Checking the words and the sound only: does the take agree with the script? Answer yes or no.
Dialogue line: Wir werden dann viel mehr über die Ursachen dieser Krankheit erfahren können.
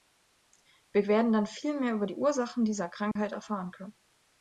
no